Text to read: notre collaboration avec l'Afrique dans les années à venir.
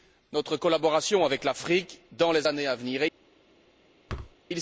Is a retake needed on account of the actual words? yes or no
no